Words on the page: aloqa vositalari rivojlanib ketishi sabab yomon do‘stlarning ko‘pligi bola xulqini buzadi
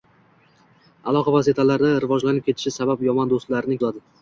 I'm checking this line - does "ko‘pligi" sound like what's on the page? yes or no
no